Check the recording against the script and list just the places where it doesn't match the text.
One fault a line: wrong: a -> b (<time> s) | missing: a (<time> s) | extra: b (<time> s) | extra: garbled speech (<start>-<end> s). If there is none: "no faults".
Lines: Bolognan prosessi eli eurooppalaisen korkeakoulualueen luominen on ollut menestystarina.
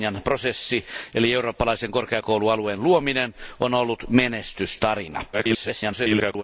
extra: garbled speech (5.3-6.4 s)